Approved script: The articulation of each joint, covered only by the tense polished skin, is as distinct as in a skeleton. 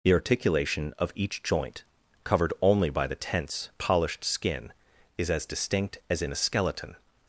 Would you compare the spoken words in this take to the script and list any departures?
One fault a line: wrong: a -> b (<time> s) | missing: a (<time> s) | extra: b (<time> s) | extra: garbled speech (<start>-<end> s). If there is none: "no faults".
no faults